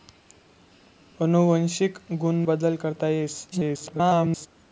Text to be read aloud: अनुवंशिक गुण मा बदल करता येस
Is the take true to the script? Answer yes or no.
no